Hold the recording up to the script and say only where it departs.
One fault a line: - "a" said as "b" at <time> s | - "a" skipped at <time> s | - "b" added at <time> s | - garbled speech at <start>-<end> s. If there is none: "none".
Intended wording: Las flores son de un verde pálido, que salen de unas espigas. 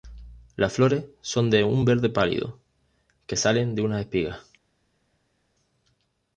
none